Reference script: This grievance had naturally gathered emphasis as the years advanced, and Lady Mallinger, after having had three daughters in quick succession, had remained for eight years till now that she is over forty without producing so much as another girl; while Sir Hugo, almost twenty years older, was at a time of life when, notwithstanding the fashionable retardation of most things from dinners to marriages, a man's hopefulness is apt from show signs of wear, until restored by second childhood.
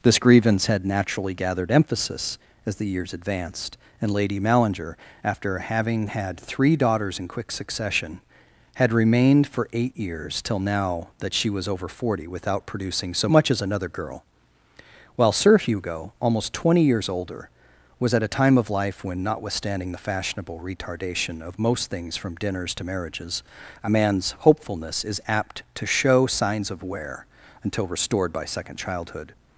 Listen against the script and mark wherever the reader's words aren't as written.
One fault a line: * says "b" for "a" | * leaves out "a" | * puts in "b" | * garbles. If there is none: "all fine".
* says "was" for "is"
* says "to" for "from"